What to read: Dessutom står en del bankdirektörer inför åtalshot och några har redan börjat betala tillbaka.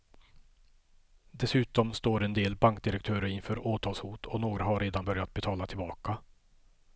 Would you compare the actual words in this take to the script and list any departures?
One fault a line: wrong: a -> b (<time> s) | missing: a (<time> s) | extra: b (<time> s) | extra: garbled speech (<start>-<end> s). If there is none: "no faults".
no faults